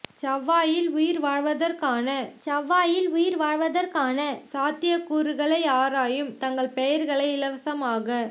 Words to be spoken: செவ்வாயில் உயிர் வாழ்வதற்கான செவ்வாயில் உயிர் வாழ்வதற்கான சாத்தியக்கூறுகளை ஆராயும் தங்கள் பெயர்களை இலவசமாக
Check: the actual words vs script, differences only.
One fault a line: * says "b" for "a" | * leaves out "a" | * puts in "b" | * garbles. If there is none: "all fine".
all fine